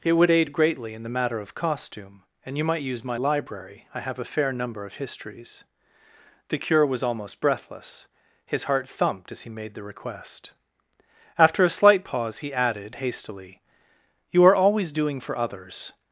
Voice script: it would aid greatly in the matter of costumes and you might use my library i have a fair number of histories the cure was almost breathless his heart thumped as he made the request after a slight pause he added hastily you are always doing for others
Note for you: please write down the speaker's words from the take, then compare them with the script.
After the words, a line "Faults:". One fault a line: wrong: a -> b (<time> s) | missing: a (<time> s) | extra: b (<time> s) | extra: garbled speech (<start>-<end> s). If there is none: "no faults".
it would aid greatly in the matter of costume and you might use my library i have a fair number of histories the cure was almost breathless his heart thumped as he made the request after a slight pause he added hastily you are always doing for others
Faults:
wrong: costumes -> costume (1.5 s)